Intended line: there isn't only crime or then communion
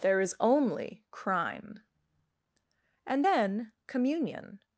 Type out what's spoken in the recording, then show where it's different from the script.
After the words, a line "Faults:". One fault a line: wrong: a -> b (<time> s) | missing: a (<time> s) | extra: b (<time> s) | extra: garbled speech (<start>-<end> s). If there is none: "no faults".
there is only crime and then communion
Faults:
wrong: isn't -> is (0.2 s)
wrong: or -> and (3.0 s)